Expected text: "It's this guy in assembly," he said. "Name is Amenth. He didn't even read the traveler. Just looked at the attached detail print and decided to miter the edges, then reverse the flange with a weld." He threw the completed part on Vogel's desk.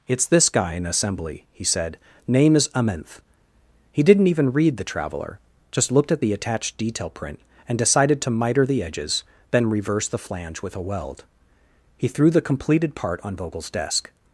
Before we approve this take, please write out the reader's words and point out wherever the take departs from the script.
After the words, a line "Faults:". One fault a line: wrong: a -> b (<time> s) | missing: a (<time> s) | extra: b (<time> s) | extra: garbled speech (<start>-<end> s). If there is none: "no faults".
"It's this guy in assembly," he said. "Name is Amenth. He didn't even read the traveler. Just looked at the attached detail print and decided to miter the edges, then reverse the flange with a weld." He threw the completed part on Vogel's desk.
Faults:
no faults